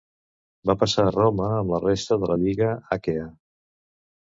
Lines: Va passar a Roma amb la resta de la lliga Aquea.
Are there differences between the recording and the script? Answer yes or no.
no